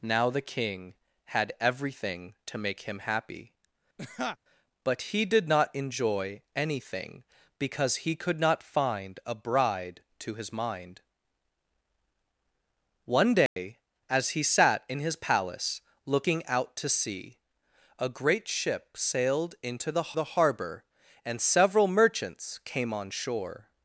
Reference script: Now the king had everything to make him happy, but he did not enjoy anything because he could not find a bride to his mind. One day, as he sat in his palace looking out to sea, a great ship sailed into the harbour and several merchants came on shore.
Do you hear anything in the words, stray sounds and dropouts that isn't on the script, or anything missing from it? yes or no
yes